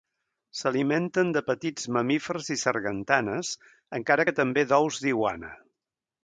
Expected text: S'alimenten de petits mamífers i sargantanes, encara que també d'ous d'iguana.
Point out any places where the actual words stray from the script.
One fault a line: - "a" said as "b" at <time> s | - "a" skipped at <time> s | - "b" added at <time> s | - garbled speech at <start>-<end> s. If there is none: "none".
none